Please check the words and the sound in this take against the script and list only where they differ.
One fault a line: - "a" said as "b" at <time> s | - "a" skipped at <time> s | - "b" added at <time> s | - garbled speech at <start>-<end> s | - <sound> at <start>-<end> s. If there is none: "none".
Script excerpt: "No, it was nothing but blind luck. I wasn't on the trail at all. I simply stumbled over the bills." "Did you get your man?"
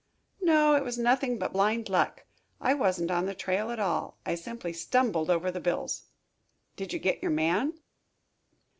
none